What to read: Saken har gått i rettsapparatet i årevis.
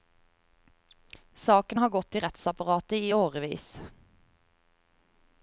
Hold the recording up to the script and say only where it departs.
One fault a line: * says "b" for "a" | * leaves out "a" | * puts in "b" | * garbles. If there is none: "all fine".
all fine